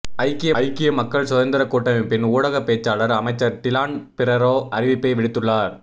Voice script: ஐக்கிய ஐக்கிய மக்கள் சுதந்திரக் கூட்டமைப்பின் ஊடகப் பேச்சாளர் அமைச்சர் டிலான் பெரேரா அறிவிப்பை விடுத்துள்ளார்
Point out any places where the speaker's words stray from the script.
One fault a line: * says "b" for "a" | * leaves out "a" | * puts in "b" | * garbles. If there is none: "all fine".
all fine